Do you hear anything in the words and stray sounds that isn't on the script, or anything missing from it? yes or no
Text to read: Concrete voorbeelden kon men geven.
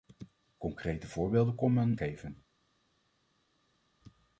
no